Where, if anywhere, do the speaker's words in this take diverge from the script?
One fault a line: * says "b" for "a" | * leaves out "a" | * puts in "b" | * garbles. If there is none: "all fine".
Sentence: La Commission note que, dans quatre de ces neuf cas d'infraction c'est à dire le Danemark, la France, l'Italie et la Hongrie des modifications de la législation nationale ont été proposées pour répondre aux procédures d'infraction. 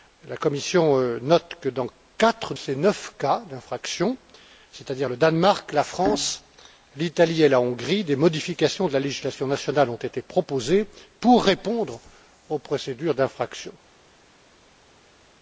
* leaves out "de"